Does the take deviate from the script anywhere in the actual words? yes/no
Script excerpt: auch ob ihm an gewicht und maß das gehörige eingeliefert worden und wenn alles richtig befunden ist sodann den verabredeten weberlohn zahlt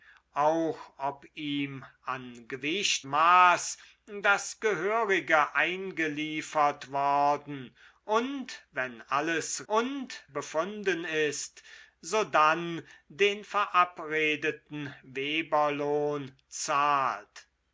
yes